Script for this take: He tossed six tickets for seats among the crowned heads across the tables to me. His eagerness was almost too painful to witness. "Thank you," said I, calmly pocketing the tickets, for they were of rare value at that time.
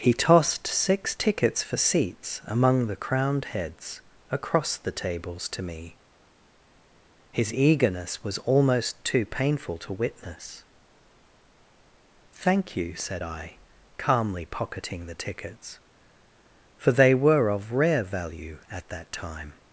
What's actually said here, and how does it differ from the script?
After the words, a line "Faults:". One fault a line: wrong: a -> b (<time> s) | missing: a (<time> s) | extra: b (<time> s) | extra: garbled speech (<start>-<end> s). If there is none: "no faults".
He tossed six tickets for seats among the crowned heads across the tables to me. His eagerness was almost too painful to witness. "Thank you," said I, calmly pocketing the tickets, for they were of rare value at that time.
Faults:
no faults